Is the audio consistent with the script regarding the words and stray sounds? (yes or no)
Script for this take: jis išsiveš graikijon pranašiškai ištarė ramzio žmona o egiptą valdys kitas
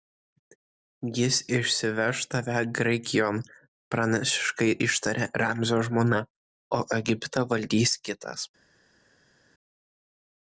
no